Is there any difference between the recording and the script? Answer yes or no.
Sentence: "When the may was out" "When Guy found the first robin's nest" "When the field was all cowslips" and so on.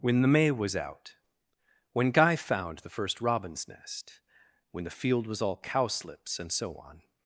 no